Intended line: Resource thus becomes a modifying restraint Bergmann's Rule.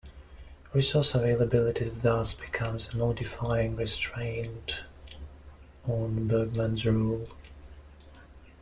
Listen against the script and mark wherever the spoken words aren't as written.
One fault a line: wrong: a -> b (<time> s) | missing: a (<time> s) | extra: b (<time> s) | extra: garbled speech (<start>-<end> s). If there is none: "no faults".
extra: availability (1.1 s)
extra: on (5.9 s)